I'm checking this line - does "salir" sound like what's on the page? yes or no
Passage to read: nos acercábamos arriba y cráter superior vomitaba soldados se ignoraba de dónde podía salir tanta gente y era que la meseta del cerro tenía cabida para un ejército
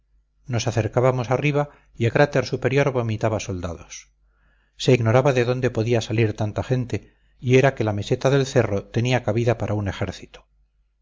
yes